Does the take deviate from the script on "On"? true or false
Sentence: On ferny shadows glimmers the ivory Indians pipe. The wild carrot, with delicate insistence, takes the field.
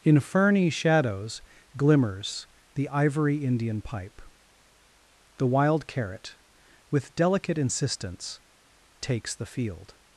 true